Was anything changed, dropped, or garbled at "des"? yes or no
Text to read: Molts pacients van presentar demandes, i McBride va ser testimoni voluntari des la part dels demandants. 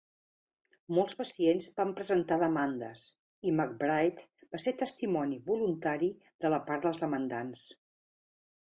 yes